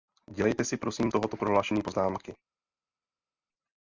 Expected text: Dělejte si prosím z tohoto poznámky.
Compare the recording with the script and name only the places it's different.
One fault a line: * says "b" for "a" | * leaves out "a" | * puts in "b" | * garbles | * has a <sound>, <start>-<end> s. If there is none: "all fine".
* puts in "prohlášení"